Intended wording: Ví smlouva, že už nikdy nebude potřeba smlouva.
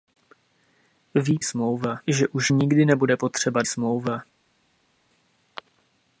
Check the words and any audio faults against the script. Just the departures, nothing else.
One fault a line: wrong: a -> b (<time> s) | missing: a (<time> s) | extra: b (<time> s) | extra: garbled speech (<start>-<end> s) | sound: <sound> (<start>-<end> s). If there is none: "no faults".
no faults